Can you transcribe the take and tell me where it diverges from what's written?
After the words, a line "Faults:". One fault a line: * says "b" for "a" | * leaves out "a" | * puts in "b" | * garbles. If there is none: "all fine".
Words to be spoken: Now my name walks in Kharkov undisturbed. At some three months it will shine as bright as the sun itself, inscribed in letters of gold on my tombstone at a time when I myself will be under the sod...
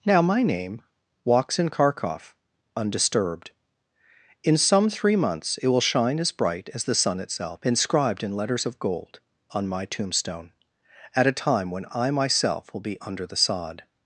Now my name walks in Kharkov undisturbed. In some three months it will shine as bright as the sun itself, inscribed in letters of gold on my tombstone at a time when I myself will be under the sod...
Faults:
* says "In" for "At"